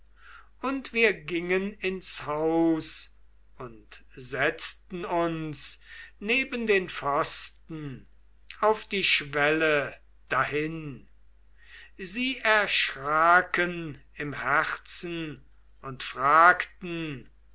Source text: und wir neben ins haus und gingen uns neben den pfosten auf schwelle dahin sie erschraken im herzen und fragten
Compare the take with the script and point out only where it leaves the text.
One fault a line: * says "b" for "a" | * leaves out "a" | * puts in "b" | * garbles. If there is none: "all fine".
* says "gingen" for "neben"
* says "setzten" for "gingen"
* puts in "die"